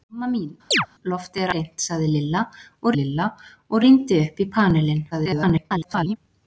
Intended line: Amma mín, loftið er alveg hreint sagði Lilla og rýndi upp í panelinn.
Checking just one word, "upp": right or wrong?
right